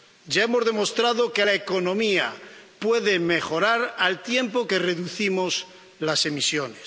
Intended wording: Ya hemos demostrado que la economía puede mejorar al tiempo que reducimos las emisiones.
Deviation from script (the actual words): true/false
false